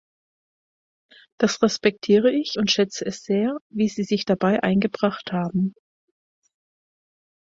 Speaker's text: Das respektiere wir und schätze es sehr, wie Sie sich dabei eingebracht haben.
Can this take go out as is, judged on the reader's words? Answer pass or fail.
fail